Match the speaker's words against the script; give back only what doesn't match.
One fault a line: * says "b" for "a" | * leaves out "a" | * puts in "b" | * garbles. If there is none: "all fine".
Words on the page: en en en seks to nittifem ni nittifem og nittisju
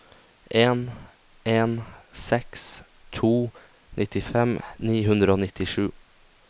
* leaves out "en"
* says "hundre" for "nittifem"